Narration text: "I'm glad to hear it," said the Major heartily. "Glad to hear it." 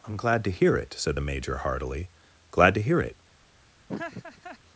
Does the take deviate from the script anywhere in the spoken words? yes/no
no